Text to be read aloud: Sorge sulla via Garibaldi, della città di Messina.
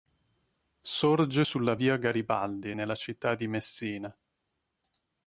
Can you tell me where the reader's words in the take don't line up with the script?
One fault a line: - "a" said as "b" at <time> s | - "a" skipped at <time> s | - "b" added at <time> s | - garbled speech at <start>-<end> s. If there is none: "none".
- "della" said as "nella" at 2.7 s